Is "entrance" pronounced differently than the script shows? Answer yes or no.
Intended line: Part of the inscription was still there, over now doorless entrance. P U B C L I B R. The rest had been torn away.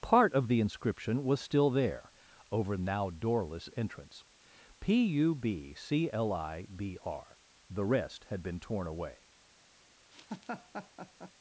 no